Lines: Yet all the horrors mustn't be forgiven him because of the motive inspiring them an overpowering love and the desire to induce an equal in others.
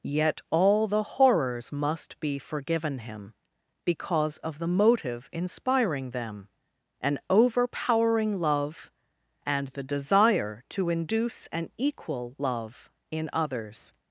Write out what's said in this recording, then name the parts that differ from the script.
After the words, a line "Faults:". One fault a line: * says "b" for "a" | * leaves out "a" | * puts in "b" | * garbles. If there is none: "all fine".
Yet all the horrors must be forgiven him because of the motive inspiring them an overpowering love and the desire to induce an equal love in others.
Faults:
* says "must" for "mustn't"
* puts in "love"